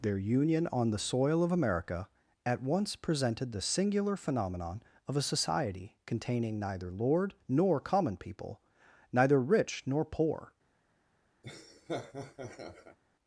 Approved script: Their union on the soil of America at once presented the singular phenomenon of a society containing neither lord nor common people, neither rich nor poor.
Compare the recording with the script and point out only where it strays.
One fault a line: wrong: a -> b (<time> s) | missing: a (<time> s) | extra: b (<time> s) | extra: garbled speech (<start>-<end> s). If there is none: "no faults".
no faults